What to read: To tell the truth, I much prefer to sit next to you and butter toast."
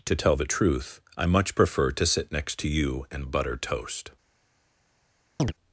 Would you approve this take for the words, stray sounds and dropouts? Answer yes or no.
no